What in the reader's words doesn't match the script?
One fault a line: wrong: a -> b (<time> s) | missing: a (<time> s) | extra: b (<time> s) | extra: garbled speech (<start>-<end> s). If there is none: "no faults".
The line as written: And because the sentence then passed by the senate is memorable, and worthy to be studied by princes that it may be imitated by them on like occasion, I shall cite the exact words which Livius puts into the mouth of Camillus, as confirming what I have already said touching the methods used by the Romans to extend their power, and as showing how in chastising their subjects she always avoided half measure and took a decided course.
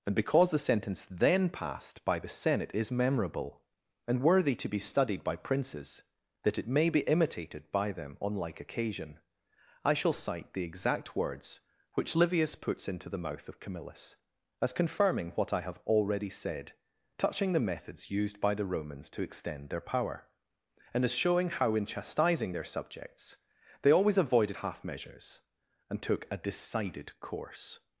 wrong: she -> they (23.8 s)
wrong: measure -> measures (24.8 s)